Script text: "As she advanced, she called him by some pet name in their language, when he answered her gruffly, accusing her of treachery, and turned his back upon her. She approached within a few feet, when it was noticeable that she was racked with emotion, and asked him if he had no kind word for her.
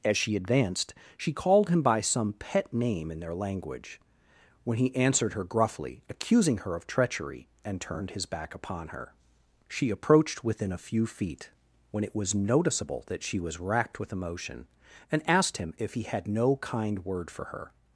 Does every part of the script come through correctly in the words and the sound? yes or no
yes